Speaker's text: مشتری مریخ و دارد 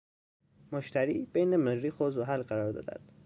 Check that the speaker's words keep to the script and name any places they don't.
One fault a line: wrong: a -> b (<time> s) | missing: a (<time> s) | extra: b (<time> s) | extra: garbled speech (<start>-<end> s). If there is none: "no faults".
extra: بین (1.3 s)
extra: زحل قرار (2.1 s)